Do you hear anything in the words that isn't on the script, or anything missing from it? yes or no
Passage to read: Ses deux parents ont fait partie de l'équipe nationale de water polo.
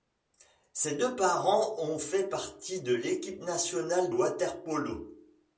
yes